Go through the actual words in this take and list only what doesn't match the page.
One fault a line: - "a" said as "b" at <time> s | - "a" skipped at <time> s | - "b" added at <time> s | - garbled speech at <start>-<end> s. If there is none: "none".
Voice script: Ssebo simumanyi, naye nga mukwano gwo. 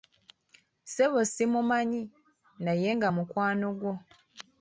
none